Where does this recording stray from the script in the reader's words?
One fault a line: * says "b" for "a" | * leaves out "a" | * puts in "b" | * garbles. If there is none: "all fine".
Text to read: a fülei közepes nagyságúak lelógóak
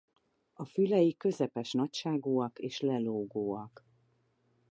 * puts in "és"